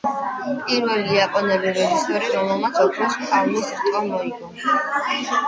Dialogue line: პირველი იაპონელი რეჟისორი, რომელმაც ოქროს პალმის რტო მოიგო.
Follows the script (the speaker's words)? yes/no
yes